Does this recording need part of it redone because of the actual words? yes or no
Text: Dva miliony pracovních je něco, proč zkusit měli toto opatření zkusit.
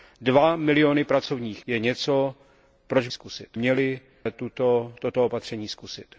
no